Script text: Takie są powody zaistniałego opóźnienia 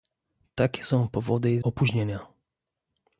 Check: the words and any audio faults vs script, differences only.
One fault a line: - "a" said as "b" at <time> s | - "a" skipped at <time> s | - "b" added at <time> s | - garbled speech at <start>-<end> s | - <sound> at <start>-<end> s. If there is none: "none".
- "zaistniałego" skipped at 1.6 s